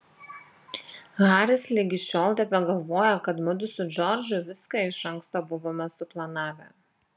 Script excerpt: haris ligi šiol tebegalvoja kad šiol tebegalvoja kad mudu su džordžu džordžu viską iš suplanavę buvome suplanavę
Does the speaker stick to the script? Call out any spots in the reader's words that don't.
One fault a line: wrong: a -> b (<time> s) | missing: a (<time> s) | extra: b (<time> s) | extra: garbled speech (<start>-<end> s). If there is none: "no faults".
missing: šiol tebegalvoja kad (3.4 s)
missing: džordžu (4.4 s)
wrong: suplanavę -> anksto (5.2 s)